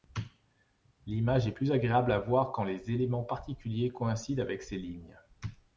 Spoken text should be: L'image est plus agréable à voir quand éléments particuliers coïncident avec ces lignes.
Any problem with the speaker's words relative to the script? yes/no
yes